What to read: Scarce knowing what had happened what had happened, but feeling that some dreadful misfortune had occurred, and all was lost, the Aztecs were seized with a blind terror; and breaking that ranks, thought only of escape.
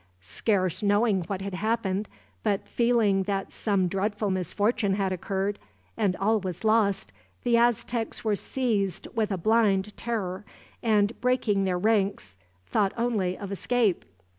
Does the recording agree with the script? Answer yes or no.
no